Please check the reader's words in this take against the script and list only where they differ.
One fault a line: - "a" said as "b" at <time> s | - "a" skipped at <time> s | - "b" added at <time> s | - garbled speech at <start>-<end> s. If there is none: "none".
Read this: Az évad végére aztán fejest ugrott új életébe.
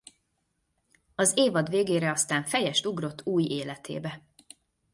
none